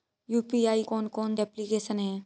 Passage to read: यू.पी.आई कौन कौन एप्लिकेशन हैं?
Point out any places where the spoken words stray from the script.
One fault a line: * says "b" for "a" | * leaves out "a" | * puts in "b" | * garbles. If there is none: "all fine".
all fine